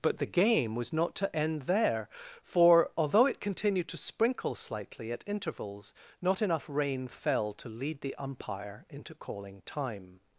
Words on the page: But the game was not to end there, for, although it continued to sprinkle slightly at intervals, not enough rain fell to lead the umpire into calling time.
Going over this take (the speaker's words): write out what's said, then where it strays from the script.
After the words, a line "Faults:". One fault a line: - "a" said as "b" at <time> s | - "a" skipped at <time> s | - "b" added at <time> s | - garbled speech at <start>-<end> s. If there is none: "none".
But the game was not to end there, for, although it continued to sprinkle slightly at intervals, not enough rain fell to lead the umpire into calling time.
Faults:
none